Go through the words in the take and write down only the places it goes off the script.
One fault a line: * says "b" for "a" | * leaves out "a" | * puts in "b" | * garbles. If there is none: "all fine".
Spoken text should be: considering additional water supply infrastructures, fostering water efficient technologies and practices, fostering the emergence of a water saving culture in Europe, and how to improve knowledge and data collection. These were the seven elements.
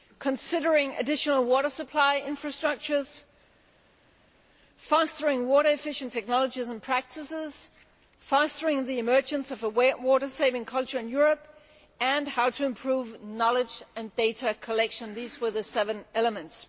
all fine